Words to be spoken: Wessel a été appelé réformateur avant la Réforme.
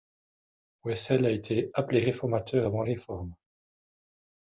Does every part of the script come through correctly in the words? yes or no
no